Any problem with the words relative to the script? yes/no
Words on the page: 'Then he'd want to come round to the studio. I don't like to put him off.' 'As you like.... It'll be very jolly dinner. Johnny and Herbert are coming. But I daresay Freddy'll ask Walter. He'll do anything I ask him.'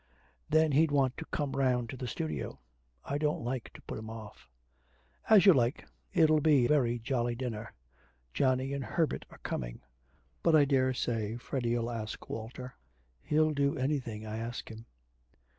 no